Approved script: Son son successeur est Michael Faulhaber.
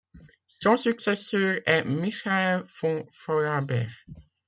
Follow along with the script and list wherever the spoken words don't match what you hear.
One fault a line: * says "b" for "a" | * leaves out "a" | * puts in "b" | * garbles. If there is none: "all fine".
* leaves out "son"
* puts in "von"